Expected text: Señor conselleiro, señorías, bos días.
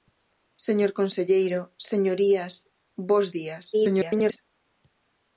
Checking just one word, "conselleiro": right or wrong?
right